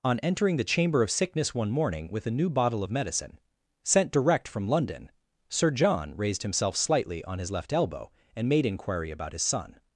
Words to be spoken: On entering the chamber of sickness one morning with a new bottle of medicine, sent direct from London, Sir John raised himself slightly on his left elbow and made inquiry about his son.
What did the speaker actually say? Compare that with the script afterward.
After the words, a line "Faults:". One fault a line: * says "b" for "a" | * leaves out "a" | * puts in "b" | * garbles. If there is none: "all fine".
On entering the chamber of sickness one morning with a new bottle of medicine, sent direct from London, Sir John raised himself slightly on his left elbow and made inquiry about his son.
Faults:
all fine